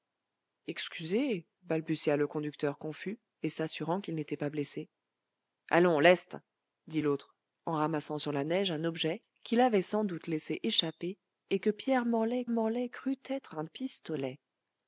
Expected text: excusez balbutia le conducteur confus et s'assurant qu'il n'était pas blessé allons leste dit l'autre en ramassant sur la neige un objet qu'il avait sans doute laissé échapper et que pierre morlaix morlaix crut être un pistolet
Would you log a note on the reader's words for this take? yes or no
no